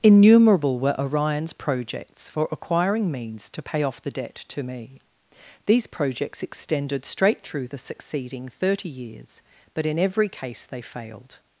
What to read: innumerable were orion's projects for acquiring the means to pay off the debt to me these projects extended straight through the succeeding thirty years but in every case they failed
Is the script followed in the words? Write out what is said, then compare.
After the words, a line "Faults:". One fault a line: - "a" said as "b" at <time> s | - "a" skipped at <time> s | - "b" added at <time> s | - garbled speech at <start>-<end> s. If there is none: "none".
innumerable were orion's projects for acquiring means to pay off the debt to me these projects extended straight through the succeeding thirty years but in every case they failed
Faults:
- "the" skipped at 3.1 s